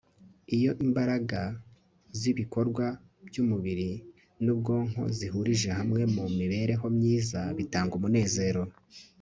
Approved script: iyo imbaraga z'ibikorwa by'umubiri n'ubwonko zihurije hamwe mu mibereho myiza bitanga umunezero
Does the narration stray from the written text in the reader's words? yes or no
no